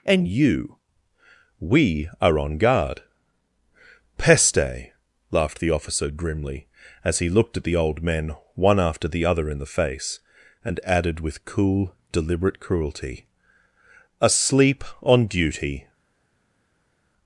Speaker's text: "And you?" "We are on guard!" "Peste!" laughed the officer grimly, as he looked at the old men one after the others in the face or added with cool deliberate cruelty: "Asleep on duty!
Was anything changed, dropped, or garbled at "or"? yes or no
yes